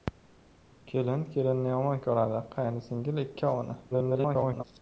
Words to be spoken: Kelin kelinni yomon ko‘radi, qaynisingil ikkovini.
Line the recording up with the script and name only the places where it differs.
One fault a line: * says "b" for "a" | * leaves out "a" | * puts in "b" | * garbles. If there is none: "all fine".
* garbles